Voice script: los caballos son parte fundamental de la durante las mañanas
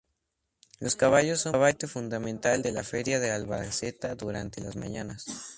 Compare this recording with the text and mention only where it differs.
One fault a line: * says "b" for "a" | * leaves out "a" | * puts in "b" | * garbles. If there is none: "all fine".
* puts in "feria de albacete"